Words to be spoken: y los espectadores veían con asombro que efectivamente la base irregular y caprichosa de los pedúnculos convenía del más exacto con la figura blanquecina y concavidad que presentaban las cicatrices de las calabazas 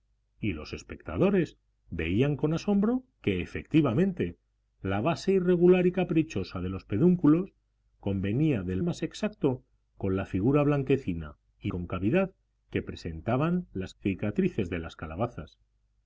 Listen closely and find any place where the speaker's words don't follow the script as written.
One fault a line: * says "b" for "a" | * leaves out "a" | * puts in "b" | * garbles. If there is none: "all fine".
all fine